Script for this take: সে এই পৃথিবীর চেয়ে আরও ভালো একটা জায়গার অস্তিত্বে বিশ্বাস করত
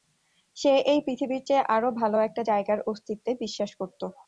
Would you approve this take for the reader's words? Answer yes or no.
yes